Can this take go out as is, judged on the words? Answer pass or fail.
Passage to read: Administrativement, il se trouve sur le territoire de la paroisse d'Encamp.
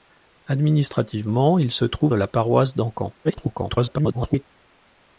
fail